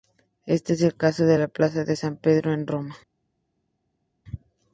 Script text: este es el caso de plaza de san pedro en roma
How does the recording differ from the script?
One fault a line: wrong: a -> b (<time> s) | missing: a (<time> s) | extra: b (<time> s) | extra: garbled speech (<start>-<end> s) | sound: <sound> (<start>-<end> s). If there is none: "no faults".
extra: la (1.4 s)